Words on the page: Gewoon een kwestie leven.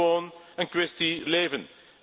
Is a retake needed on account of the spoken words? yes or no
no